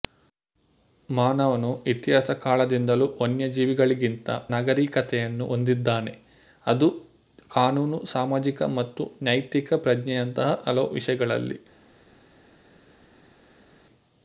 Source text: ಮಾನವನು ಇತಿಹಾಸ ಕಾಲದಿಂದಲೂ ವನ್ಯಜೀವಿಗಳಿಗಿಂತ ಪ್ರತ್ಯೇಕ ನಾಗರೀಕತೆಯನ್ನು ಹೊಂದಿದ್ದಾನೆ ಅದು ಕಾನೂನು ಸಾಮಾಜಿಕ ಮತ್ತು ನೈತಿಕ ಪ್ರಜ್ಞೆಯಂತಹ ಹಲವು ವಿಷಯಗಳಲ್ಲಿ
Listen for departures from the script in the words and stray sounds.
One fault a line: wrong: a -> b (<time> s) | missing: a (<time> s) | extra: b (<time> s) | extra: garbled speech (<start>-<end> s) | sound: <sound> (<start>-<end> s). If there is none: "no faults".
missing: ಪ್ರತ್ಯೇಕ (4.3 s)